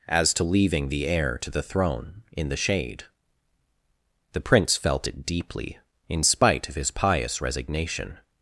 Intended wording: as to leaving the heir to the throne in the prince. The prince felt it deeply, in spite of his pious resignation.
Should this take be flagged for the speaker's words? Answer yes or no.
yes